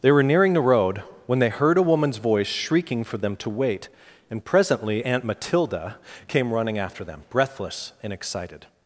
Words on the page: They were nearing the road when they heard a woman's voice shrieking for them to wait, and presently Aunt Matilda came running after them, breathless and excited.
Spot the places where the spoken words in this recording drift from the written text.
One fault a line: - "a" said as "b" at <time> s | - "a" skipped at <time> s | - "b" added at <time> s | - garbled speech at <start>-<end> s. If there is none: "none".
none